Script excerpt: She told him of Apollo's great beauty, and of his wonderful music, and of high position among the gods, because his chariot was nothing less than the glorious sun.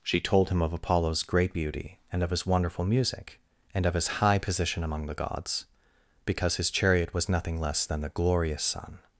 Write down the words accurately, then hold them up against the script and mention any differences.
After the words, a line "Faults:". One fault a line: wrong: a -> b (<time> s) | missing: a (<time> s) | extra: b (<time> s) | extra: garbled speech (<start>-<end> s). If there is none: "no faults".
She told him of Apollo's great beauty, and of his wonderful music, and of his high position among the gods, because his chariot was nothing less than the glorious sun.
Faults:
extra: his (3.9 s)